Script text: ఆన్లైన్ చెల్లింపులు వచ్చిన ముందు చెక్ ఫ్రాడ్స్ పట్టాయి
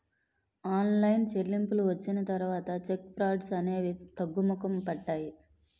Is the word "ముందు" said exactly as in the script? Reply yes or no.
no